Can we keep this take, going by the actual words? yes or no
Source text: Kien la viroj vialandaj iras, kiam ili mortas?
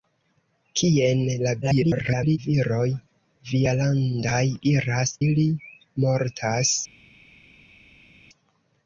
no